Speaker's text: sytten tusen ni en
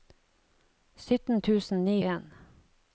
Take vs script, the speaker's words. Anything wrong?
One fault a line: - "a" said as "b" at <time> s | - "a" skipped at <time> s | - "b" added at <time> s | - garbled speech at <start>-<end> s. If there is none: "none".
none